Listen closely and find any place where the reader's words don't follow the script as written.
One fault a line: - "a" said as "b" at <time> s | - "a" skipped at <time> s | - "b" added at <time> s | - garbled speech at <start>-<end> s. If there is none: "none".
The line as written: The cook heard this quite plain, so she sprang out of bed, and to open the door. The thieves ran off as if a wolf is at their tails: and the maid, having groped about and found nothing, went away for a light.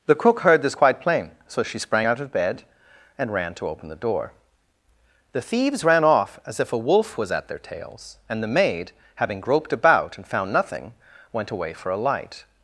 - "ran" added at 3.3 s
- "is" said as "was" at 7.2 s